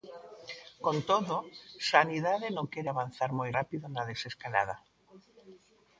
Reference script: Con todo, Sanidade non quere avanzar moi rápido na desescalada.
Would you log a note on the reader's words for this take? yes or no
no